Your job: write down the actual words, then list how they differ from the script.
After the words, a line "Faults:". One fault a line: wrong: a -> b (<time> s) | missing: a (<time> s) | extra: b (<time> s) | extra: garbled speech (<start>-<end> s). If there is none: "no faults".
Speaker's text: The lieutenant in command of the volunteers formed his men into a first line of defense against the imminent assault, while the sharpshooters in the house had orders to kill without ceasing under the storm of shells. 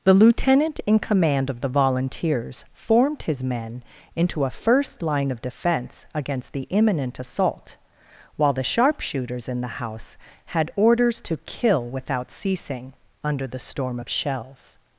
The lieutenant in command of the volunteers formed his men into a first line of defense against the imminent assault, while the sharpshooters in the house had orders to kill without ceasing under the storm of shells.
Faults:
no faults